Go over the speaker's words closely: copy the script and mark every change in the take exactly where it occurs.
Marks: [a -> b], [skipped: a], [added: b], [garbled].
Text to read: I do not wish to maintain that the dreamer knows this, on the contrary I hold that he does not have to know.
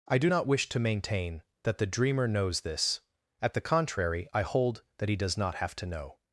I do not wish to maintain that the dreamer knows this, [on -> at] the contrary I hold that he does not have to know.